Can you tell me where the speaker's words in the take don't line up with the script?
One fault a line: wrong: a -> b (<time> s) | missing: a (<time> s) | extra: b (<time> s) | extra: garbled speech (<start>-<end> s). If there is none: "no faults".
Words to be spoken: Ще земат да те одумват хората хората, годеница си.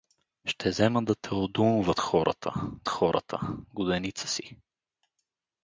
no faults